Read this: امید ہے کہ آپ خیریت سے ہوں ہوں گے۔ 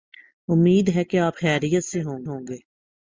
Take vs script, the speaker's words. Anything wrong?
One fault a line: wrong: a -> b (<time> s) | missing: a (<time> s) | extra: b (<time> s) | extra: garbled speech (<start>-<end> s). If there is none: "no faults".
no faults